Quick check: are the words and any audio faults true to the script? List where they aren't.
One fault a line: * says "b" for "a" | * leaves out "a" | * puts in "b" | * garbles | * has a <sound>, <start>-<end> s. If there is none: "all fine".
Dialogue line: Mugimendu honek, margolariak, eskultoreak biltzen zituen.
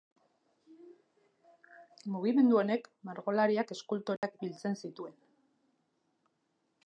* has a dropout, 4.2-4.2 s